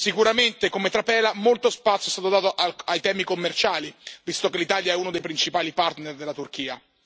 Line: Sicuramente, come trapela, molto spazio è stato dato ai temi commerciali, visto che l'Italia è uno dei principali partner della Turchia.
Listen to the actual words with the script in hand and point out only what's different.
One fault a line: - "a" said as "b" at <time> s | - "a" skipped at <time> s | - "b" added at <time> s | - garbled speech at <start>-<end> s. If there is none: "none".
none